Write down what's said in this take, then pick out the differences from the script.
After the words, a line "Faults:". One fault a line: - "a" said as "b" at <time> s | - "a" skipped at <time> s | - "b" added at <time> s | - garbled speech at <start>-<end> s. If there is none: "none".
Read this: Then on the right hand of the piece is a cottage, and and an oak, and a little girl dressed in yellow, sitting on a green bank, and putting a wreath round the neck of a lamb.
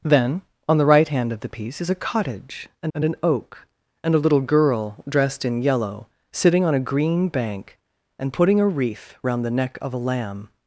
Then on the right hand of the piece is a cottage, and and an oak, and a little girl dressed in yellow, sitting on a green bank, and putting a wreath round the neck of a lamb.
Faults:
none